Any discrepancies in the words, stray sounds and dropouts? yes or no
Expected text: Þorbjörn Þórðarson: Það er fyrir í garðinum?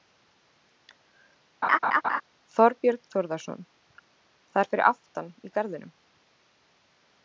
yes